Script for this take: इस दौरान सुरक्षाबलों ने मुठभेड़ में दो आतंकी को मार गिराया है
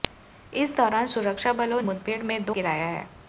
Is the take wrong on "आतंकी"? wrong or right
wrong